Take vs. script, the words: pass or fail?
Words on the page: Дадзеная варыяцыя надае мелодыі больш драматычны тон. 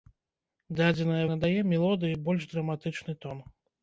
fail